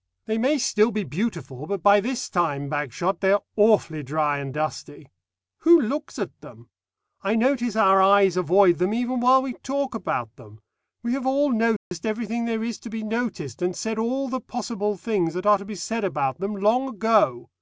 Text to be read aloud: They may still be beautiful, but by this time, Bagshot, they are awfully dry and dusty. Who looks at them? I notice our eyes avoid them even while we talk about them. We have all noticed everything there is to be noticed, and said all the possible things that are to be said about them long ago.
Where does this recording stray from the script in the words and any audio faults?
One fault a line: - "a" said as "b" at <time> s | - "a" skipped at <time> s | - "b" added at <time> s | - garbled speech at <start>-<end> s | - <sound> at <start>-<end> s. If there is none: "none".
- dropout at 11.8-11.9 s